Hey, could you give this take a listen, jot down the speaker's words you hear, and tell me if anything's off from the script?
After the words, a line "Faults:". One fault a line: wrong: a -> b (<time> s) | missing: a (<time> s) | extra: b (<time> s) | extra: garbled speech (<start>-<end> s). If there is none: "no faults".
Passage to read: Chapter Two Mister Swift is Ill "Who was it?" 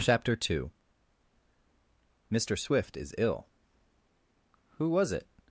Chapter Two Mister Swift is Ill "Who was it?"
Faults:
no faults